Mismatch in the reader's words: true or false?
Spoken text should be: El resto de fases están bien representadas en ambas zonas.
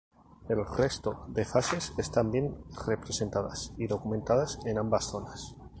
true